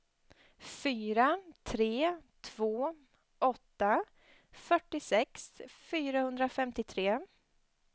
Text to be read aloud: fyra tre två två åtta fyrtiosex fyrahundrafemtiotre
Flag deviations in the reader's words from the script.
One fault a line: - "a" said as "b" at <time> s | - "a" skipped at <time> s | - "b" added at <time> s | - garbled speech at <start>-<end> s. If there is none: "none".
- "två" skipped at 3.0 s